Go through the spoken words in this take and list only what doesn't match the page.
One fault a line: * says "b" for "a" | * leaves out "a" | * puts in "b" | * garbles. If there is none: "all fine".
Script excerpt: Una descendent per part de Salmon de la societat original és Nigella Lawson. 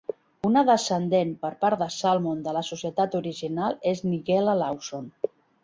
all fine